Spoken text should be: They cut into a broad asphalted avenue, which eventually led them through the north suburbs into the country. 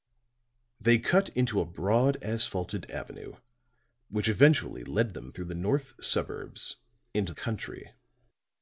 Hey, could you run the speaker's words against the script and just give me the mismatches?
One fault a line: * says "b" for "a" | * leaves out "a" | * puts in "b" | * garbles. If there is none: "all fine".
* leaves out "the"